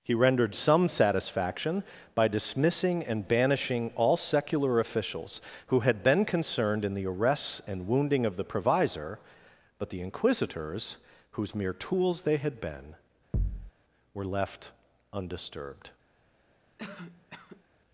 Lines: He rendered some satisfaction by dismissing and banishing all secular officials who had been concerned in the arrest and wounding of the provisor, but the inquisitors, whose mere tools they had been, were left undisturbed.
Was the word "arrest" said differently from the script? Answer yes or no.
yes